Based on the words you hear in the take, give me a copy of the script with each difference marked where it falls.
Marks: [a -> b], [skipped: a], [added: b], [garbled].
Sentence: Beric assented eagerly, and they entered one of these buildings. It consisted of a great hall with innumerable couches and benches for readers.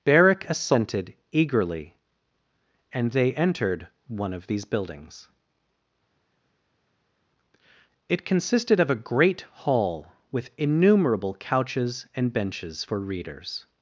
Beric assented eagerly, and they entered one of these buildings. It consisted of a great hall with innumerable couches and benches for readers.